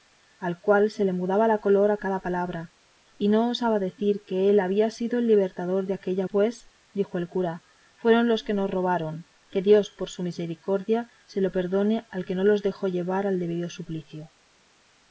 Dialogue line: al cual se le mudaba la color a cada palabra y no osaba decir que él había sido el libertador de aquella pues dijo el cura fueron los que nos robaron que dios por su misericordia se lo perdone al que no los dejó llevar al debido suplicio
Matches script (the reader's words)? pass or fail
pass